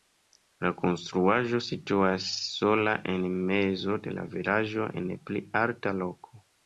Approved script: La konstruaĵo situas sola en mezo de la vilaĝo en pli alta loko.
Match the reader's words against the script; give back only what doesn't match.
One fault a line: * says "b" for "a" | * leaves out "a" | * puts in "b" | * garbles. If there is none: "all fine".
all fine